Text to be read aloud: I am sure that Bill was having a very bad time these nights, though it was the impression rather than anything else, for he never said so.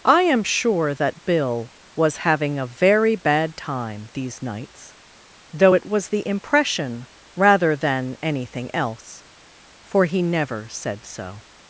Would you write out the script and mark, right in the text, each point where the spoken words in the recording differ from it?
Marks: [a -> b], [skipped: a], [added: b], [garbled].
I am sure that Bill was having a very bad time these nights, though it was the impression rather than anything else, for he never said so.